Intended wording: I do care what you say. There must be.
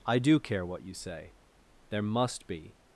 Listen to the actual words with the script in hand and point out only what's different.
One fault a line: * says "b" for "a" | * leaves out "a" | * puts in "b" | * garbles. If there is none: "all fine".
all fine